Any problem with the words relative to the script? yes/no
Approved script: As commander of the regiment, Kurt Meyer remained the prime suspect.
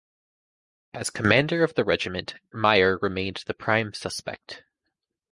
yes